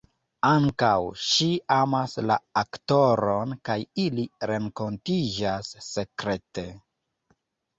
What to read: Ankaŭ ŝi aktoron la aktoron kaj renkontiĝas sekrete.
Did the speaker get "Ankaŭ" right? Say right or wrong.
right